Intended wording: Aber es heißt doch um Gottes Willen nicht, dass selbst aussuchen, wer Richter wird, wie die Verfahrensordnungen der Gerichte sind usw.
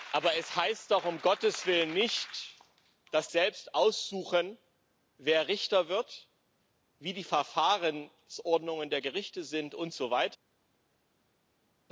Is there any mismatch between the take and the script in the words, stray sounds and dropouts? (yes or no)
no